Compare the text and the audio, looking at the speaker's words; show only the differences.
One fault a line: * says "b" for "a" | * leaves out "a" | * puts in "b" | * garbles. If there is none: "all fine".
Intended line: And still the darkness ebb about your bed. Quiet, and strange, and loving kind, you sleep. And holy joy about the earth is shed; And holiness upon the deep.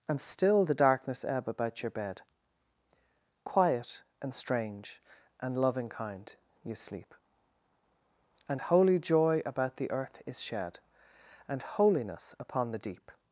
all fine